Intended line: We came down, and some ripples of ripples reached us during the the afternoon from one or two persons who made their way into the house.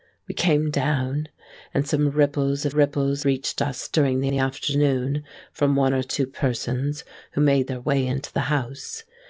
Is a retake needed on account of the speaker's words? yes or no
no